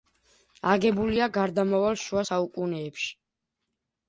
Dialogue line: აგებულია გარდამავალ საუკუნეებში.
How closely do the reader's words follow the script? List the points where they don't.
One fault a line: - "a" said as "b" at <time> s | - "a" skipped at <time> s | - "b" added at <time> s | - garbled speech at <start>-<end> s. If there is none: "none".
- "შუა" added at 2.0 s